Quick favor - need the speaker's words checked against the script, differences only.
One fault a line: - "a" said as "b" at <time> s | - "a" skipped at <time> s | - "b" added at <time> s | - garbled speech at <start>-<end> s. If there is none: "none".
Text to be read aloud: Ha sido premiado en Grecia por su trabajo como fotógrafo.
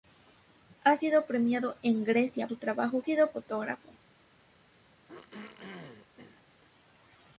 - "por" skipped at 2.5 s
- "como" said as "sido" at 3.0 s